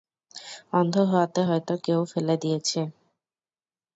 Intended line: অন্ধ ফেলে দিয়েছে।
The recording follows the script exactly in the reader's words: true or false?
false